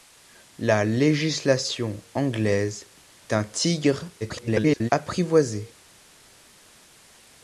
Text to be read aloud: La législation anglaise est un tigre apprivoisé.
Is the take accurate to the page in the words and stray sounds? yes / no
no